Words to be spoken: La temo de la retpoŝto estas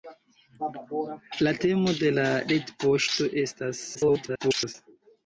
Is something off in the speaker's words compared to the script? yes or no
yes